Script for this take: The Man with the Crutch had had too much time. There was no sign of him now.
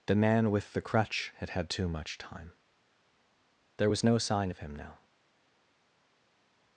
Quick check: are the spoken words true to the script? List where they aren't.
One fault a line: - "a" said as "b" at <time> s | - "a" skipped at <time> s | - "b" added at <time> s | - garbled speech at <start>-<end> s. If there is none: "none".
none